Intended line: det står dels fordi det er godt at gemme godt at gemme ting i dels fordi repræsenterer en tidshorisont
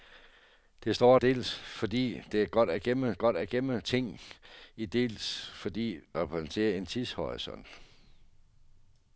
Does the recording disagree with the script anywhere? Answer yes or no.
no